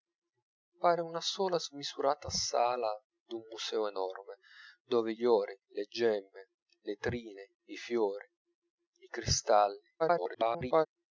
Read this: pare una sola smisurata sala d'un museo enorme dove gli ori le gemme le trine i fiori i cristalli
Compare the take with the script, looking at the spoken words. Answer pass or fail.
fail